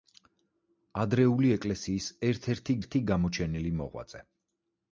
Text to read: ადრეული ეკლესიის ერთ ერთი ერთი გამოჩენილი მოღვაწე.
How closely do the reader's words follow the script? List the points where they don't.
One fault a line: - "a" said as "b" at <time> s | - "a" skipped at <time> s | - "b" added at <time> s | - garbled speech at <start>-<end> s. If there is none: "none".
none